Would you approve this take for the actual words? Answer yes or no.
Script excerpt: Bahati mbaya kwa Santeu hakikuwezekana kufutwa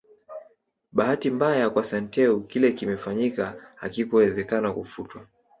no